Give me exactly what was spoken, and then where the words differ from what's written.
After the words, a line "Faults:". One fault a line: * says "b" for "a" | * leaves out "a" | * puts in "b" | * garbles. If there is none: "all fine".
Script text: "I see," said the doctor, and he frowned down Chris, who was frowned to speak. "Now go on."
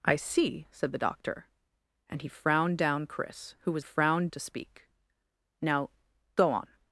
"I see," said the doctor, and he frowned down Chris, who was frowned to speak. "Now go on."
Faults:
all fine